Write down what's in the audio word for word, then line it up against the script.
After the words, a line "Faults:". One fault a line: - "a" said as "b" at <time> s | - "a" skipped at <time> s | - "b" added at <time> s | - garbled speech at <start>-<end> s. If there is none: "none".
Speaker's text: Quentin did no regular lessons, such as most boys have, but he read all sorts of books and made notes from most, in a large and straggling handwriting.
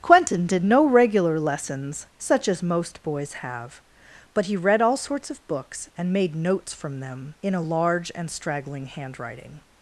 Quentin did no regular lessons, such as most boys have, but he read all sorts of books and made notes from them, in a large and straggling handwriting.
Faults:
- "most" said as "them" at 7.0 s